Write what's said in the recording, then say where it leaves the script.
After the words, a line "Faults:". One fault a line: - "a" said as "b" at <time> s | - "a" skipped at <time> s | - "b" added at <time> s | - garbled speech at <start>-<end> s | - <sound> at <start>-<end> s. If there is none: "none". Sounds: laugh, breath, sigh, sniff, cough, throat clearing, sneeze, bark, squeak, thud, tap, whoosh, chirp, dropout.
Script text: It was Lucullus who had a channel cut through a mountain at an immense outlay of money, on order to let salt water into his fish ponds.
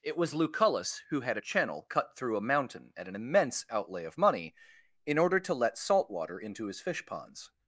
It was Lucullus who had a channel cut through a mountain at an immense outlay of money, in order to let salt water into his fish ponds.
Faults:
- "on" said as "in" at 5.1 s